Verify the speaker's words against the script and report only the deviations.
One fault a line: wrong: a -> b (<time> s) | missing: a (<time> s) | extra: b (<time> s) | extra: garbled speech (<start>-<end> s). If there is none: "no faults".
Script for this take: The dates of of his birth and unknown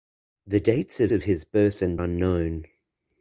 no faults